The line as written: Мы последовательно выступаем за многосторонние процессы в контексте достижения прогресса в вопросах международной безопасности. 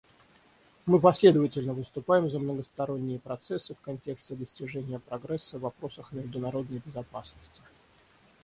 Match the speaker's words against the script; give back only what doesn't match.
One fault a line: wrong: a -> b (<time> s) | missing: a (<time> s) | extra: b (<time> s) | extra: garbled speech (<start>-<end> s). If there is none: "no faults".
no faults